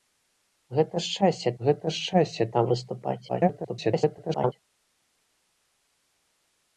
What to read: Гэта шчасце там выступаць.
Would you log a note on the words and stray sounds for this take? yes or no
yes